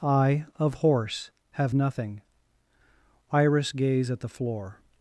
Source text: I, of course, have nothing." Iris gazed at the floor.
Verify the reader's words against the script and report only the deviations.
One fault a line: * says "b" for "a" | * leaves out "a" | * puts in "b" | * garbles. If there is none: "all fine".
* says "horse" for "course"
* says "gaze" for "gazed"